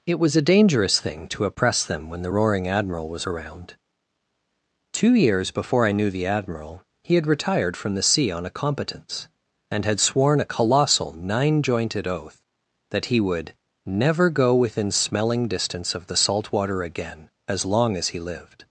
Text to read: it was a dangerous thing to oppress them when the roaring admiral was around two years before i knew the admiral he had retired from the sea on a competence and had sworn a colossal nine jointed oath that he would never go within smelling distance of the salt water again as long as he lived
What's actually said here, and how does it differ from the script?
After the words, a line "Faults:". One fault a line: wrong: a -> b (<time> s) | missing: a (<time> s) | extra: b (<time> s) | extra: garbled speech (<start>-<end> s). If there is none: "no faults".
it was a dangerous thing to oppress them when the roaring admiral was around two years before i knew the admiral he had retired from the sea on a competence and had sworn a colossal nine jointed oath that he would never go within smelling distance of the salt water again as long as he lived
Faults:
no faults